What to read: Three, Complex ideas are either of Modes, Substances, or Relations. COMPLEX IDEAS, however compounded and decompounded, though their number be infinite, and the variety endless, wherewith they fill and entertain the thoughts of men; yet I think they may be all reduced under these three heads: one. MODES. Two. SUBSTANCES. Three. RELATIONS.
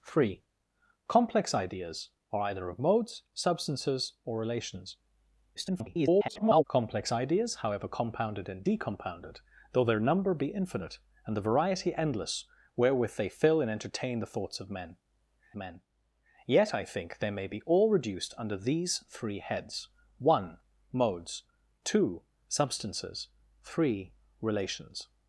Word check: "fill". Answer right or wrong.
right